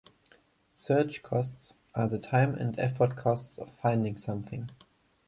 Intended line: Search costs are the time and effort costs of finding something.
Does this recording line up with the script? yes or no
yes